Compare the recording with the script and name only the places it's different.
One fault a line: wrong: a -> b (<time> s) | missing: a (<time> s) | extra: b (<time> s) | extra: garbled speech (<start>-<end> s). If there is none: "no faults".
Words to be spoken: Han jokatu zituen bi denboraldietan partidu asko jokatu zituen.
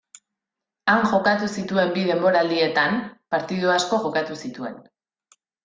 no faults